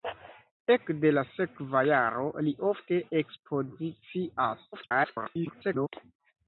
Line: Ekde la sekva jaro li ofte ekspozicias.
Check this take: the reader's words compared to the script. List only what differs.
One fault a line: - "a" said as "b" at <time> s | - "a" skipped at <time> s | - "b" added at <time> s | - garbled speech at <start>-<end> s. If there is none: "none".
- garbled speech at 4.7-5.9 s